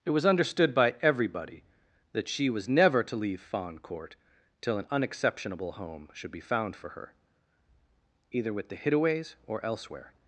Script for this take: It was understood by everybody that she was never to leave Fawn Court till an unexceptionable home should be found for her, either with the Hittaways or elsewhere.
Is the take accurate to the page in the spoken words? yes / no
yes